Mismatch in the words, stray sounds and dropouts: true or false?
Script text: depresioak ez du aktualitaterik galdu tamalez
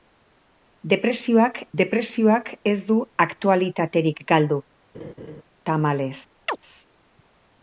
true